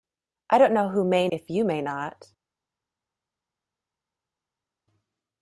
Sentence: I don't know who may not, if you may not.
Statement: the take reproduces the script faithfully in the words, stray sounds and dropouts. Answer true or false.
false